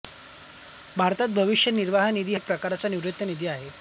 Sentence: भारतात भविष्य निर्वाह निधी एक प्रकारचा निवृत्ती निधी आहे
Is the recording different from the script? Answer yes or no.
no